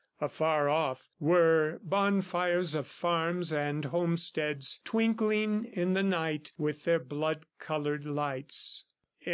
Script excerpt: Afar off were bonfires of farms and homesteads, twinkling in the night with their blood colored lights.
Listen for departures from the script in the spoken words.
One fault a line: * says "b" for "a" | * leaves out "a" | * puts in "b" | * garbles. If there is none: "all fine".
all fine